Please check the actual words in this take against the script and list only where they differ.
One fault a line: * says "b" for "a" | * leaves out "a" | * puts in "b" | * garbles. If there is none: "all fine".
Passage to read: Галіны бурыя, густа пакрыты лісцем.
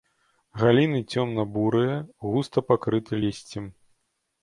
* puts in "цёмна"